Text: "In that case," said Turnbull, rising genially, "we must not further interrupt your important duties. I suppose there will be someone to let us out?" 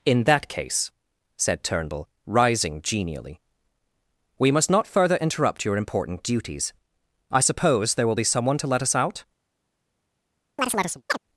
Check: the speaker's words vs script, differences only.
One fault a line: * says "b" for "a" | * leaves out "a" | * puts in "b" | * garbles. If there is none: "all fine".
all fine